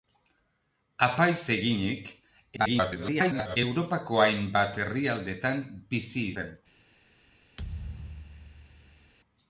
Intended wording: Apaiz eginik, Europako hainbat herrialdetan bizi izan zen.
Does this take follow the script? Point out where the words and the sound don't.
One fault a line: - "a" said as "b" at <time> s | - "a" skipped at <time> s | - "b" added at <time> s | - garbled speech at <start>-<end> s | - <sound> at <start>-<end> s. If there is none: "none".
- garbled speech at 2.6-3.6 s
- "izan" skipped at 6.3 s
- thud at 7.6-9.1 s